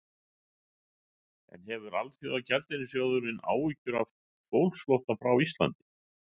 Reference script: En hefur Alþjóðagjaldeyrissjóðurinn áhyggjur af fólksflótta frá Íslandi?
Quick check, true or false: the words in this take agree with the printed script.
true